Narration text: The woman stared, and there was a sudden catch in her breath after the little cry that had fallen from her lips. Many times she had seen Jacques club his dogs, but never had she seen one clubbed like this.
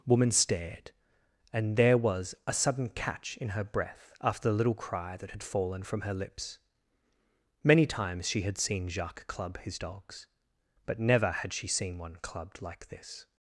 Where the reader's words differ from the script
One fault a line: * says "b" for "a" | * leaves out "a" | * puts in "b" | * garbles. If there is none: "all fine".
* leaves out "The"